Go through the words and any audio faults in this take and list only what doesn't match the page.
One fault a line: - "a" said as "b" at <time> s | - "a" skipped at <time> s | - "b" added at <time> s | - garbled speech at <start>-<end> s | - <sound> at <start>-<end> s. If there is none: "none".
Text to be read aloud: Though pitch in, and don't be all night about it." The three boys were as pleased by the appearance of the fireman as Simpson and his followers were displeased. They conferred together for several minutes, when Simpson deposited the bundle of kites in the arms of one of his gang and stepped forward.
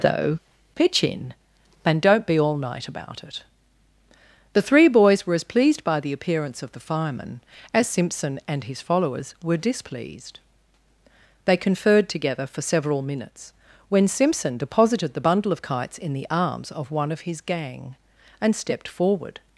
none